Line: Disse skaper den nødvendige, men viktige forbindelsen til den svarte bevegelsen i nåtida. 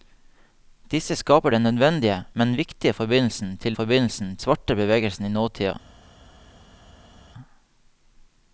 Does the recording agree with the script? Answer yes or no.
no